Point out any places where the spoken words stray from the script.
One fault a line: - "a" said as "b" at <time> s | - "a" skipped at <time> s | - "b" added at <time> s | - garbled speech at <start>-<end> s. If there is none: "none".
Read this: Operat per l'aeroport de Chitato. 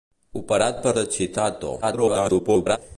- "l'aeroport" skipped at 0.9 s
- garbled speech at 1.8-2.8 s